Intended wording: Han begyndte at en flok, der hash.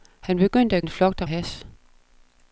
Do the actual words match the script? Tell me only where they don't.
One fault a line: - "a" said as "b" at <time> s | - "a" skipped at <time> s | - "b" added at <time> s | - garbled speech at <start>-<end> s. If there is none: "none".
none